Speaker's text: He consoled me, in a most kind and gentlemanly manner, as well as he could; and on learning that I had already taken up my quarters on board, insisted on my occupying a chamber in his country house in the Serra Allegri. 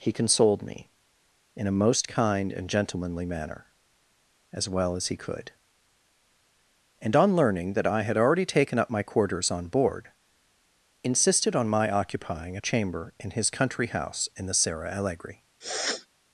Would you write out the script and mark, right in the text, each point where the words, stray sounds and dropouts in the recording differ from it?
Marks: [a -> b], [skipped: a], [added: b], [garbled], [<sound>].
He consoled me, in a most kind and gentlemanly manner, as well as he could; and on learning that I had already taken up my quarters on board, insisted on my occupying a chamber in his country house in the Serra Allegri. [sniff]